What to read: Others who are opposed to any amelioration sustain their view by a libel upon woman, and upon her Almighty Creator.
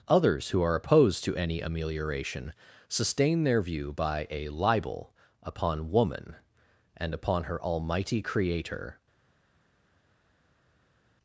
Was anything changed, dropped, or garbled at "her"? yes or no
no